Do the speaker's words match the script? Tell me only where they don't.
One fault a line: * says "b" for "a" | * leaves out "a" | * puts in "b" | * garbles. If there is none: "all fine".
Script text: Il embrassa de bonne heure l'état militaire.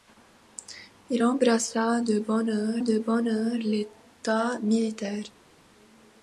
* puts in "de bonne heure"